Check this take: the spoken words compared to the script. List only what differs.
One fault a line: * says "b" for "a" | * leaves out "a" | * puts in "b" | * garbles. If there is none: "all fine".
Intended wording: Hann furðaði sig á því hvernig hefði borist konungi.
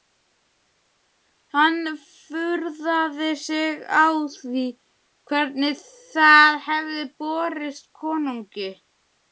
* puts in "það"